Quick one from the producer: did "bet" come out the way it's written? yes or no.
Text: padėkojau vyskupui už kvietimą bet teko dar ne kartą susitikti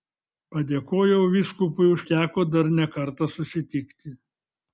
no